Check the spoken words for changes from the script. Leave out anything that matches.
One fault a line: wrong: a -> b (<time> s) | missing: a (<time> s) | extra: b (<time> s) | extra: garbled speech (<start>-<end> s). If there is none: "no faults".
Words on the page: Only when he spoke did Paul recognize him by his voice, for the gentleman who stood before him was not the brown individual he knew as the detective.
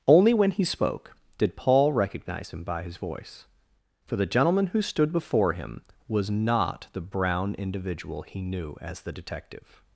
no faults